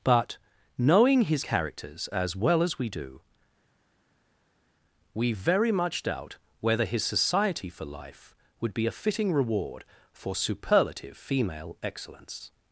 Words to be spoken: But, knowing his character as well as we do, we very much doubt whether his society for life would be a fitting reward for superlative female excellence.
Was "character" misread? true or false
true